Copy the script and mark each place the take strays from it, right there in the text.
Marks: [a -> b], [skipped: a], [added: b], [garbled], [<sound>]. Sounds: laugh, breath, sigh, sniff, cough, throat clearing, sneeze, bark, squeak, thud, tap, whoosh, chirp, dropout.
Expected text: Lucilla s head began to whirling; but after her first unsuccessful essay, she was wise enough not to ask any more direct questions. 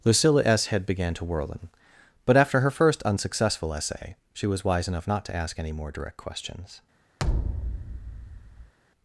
Lucilla s head began to whirling; but after her first unsuccessful essay, she was wise enough not to ask any more direct questions. [thud]